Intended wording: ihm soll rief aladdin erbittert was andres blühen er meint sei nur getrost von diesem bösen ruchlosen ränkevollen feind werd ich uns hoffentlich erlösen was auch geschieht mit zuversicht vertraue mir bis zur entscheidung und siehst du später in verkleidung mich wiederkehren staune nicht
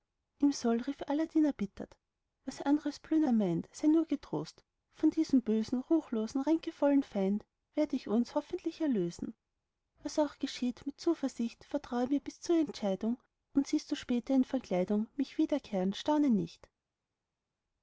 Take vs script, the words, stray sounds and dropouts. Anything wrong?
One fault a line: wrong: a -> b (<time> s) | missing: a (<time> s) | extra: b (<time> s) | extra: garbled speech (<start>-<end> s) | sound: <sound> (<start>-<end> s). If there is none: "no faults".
no faults